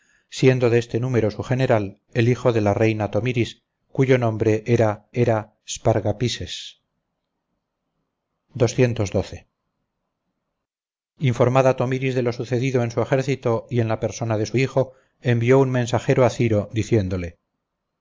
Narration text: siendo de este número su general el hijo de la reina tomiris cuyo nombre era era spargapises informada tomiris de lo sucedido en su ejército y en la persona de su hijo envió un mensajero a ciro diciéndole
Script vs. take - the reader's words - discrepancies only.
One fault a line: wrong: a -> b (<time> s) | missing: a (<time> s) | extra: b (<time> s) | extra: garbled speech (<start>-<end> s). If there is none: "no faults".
no faults